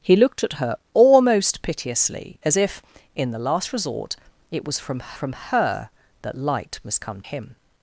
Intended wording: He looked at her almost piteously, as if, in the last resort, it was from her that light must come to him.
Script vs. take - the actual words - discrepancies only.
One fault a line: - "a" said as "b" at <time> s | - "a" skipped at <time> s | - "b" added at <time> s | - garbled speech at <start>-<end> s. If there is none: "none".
- "from" added at 5.1 s
- "to" skipped at 7.2 s